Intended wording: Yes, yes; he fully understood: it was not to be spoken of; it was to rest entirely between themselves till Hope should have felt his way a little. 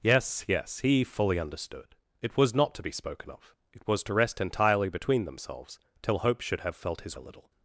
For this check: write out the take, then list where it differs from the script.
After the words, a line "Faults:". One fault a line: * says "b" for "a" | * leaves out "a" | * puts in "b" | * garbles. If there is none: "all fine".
Yes, yes; he fully understood: it was not to be spoken of; it was to rest entirely between themselves till Hope should have felt his a little.
Faults:
* leaves out "way"